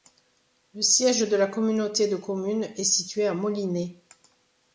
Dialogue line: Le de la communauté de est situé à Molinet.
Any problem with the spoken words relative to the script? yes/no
yes